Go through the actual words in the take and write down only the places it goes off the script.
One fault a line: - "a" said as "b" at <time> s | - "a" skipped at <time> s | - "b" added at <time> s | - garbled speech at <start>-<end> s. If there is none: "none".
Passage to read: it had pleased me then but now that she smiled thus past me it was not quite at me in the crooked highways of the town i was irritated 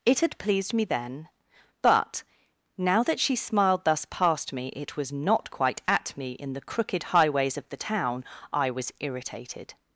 none